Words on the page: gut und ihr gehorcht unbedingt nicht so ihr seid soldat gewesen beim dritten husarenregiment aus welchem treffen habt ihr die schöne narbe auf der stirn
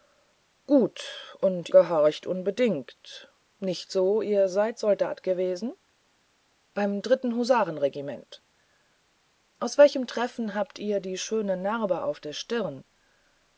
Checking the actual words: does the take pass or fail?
fail